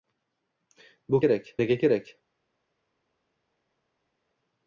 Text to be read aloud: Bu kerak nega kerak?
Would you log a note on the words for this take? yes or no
no